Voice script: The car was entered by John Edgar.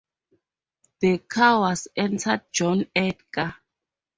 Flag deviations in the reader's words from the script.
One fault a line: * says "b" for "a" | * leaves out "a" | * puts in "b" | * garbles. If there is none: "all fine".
* leaves out "by"